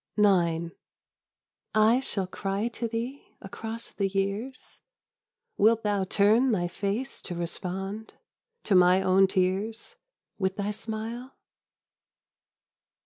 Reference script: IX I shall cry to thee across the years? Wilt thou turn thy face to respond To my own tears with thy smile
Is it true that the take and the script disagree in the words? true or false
false